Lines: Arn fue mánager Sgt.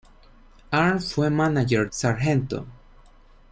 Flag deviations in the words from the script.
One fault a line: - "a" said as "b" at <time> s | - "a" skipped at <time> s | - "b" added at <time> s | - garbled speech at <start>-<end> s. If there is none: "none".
none